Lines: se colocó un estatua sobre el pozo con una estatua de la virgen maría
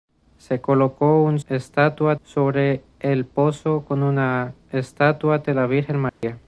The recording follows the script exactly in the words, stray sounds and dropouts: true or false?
false